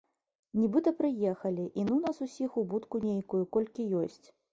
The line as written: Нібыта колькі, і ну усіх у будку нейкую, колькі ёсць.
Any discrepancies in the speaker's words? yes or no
yes